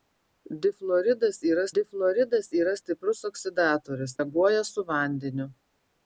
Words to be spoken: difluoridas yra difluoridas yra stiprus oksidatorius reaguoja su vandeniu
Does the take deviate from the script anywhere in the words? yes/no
no